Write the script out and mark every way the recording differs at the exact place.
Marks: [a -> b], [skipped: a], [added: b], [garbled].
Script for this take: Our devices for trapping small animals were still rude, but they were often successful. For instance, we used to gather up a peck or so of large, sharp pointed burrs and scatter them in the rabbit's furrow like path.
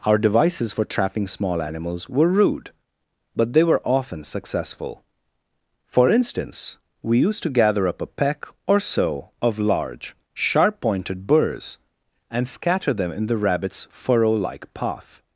Our devices for trapping small animals were [skipped: still] rude, but they were often successful. For instance, we used to gather up a peck or so of large, sharp pointed burrs and scatter them in the rabbit's furrow like path.